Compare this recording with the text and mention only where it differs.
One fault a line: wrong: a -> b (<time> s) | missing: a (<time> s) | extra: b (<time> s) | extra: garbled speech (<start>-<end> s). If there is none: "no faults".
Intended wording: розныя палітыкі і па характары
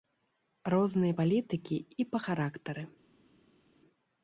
no faults